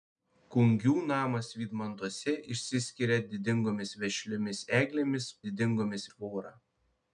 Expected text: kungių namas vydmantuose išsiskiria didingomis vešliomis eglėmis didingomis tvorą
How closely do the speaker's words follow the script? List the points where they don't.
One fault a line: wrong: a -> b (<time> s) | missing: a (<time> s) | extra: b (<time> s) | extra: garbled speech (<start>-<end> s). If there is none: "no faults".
no faults